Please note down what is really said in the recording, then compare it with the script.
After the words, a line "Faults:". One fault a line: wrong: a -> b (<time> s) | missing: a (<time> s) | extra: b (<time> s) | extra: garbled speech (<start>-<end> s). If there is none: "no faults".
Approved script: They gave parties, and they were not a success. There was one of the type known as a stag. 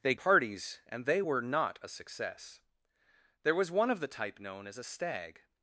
They parties, and they were not a success. There was one of the type known as a stag.
Faults:
missing: gave (0.1 s)